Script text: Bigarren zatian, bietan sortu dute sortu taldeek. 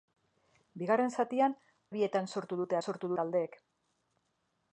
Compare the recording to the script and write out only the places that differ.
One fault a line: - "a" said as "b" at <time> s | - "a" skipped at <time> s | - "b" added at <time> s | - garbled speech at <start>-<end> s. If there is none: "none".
none